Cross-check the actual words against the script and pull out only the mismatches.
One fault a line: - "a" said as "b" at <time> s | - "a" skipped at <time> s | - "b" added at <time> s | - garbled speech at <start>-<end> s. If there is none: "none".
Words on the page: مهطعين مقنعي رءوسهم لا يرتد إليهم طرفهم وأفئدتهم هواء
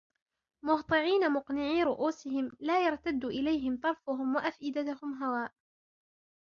none